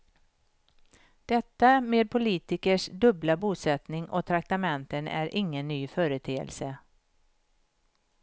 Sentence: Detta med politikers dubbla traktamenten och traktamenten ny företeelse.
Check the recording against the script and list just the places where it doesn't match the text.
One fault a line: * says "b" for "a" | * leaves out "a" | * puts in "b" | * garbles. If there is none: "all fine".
* says "bosättning" for "traktamenten"
* puts in "är ingen"